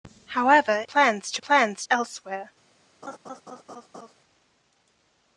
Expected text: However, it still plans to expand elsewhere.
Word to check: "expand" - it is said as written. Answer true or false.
false